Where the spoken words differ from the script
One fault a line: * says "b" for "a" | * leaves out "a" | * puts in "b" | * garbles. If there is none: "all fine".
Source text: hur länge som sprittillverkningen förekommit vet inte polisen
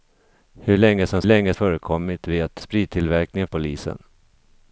* says "länge" for "sprittillverkningen"
* says "sprittillverkningen" for "inte"